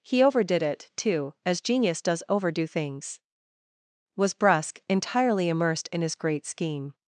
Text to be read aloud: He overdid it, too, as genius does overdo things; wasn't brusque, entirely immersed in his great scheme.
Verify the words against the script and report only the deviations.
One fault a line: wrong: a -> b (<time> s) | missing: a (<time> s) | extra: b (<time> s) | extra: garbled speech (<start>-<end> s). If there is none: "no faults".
wrong: wasn't -> was (4.2 s)